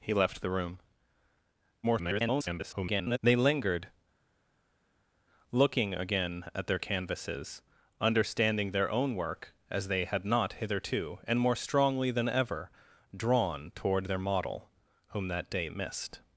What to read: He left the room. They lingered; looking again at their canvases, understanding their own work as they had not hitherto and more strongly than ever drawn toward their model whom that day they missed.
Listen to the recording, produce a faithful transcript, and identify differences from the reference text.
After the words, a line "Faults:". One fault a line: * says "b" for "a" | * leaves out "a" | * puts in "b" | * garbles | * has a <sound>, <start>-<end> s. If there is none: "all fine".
He left the room. [garbled] They lingered; looking again at their canvases, understanding their own work as they had not hitherto and more strongly than ever drawn toward their model whom that day missed.
Faults:
* garbles
* leaves out "they"